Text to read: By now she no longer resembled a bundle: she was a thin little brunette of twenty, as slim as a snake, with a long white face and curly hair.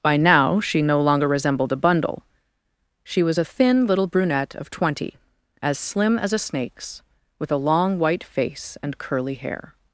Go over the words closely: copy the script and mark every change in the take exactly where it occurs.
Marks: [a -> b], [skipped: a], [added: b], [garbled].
By now she no longer resembled a bundle: she was a thin little brunette of twenty, as slim as a [snake, -> snakes] with a long white face and curly hair.